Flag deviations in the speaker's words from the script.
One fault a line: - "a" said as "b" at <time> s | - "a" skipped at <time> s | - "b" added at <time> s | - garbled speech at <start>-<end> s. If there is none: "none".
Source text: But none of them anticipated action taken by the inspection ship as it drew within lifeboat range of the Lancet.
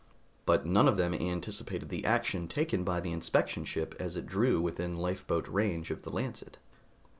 - "the" added at 1.9 s